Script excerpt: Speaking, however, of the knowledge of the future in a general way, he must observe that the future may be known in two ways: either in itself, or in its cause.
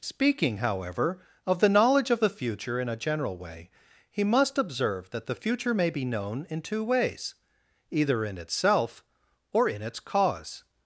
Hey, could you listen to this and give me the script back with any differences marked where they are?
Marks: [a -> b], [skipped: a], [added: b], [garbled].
Speaking, however, of the knowledge of the future in a general way, he must observe that the future may be known in two ways: either in itself, or in its cause.